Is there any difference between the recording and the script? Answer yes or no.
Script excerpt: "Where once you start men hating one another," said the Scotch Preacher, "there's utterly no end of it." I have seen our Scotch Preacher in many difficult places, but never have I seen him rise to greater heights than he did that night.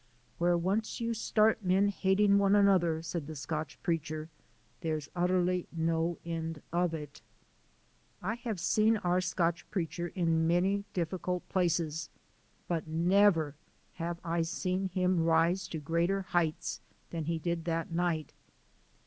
no